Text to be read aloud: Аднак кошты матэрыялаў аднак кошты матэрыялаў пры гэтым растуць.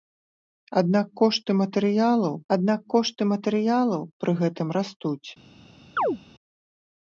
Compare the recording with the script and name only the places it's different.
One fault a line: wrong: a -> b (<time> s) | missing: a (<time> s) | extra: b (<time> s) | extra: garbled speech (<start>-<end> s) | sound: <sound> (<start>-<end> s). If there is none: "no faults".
sound: chirp (6.0-6.2 s)